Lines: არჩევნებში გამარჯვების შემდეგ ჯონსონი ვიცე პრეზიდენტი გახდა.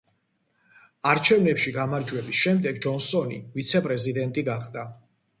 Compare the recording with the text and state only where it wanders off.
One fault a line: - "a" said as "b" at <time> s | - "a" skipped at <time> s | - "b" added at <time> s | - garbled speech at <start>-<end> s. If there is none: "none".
none